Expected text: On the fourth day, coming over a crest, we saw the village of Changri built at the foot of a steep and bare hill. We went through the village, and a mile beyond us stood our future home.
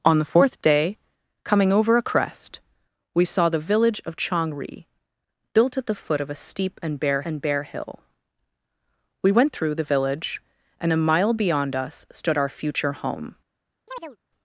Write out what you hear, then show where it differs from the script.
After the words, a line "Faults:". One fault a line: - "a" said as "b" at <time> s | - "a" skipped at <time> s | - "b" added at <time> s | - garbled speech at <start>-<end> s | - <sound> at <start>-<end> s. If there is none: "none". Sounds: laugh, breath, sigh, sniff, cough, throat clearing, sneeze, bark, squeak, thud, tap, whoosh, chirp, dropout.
On the fourth day, coming over a crest, we saw the village of Changri built at the foot of a steep and bare and bare hill. We went through the village, and a mile beyond us stood our future home.
Faults:
- "and bare" added at 7.2 s
- chirp at 13.9-14.2 s